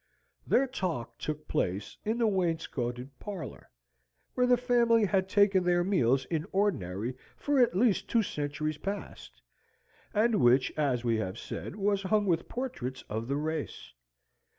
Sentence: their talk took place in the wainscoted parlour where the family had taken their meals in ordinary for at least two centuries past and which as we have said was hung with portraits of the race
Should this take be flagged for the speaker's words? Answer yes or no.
no